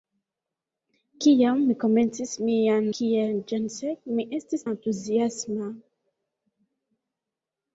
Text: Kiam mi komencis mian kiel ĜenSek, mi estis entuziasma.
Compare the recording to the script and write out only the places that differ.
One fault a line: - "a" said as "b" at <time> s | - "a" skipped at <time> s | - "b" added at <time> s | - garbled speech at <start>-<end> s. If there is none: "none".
none